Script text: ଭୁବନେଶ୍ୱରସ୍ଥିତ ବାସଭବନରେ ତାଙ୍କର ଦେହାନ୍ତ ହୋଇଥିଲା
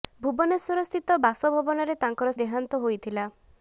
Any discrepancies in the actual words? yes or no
no